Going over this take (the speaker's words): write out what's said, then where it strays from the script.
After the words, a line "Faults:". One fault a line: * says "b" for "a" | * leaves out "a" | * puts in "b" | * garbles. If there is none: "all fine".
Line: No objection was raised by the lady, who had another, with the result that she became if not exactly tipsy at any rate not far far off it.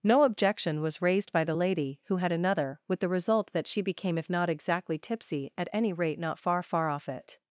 No objection was raised by the lady, who had another, with the result that she became if not exactly tipsy at any rate not far far off it.
Faults:
all fine